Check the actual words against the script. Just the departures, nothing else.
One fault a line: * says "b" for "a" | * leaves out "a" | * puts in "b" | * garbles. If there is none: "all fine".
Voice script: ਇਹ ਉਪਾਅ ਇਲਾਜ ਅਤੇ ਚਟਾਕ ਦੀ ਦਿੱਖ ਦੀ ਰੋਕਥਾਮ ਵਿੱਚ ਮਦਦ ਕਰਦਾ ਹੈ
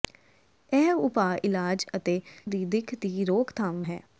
* leaves out "ਚਟਾਕ"
* leaves out "ਵਿੱਚ ਮਦਦ ਕਰਦਾ"